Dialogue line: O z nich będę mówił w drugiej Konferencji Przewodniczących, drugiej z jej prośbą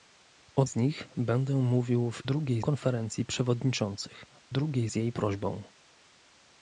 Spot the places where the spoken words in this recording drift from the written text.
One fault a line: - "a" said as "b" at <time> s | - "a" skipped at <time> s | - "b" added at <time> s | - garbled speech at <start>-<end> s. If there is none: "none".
none